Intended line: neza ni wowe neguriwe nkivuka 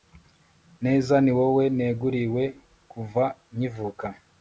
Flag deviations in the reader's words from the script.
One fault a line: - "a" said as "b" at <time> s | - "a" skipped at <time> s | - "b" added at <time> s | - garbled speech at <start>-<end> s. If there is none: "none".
- "kuva" added at 2.9 s